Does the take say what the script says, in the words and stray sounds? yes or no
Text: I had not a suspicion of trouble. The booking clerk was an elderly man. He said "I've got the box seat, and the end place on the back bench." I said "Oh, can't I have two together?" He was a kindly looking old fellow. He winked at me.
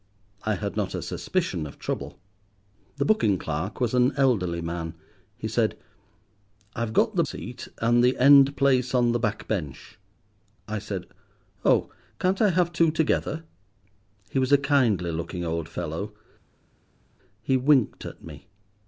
no